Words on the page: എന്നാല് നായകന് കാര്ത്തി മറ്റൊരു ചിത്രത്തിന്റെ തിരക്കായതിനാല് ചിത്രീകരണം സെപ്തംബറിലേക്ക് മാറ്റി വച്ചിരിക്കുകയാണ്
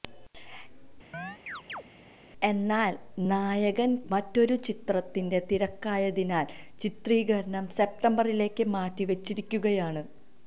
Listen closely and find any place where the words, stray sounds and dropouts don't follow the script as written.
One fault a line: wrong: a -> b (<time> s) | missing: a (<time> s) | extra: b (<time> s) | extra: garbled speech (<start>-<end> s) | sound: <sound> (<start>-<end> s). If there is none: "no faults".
sound: chirp (1.1-1.8 s)
missing: കാര്ത്തി (4.0 s)